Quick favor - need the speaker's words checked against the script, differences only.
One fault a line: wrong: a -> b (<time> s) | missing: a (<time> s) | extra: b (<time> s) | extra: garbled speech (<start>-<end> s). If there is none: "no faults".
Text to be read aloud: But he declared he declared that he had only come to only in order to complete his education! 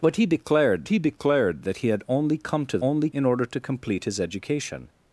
no faults